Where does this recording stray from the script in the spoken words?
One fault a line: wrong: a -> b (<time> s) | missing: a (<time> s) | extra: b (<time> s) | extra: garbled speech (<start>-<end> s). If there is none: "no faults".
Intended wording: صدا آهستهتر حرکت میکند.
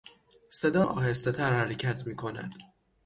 no faults